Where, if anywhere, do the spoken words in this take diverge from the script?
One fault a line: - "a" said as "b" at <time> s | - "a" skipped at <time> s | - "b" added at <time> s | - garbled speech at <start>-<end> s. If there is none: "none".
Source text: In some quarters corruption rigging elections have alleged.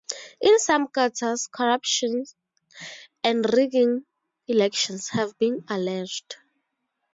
- "and" added at 3.2 s
- "been" added at 5.4 s